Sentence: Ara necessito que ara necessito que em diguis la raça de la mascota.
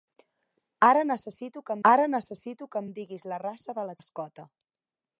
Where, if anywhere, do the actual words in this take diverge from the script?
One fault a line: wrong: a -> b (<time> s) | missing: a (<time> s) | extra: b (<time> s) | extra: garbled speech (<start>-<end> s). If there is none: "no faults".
no faults